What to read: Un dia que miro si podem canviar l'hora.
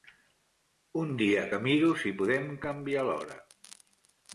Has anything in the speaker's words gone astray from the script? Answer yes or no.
no